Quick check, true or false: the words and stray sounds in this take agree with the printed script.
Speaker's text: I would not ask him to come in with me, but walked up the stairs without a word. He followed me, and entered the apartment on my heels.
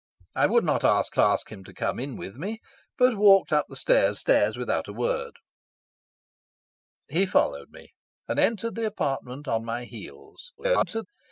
false